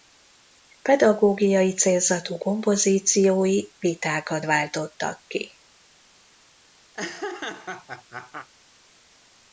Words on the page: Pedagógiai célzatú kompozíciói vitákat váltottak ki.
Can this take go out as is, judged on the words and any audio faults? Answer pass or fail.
fail